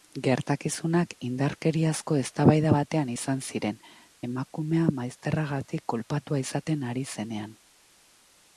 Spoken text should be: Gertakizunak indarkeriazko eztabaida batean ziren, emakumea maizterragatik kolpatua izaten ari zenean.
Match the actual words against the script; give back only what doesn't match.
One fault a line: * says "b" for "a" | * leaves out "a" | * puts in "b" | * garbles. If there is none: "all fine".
* puts in "izan"